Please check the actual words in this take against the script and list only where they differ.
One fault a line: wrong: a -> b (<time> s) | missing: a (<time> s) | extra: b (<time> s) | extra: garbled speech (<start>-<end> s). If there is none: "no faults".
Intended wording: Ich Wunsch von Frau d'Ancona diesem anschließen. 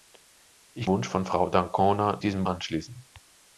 no faults